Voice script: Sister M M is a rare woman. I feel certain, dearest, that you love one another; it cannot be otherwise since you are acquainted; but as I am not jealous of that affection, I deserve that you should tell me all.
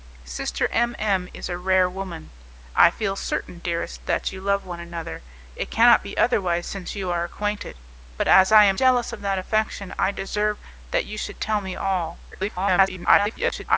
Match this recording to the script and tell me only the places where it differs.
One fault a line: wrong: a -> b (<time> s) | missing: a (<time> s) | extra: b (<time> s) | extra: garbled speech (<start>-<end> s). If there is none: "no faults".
missing: not (8.8 s)
extra: garbled speech (12.3-13.8 s)